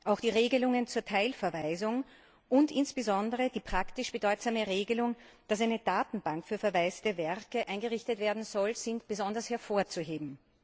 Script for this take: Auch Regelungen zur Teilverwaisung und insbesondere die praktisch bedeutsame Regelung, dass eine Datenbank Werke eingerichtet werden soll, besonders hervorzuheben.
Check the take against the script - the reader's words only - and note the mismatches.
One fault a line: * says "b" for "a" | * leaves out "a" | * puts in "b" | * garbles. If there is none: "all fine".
* puts in "die"
* puts in "für verwaiste"
* puts in "sind"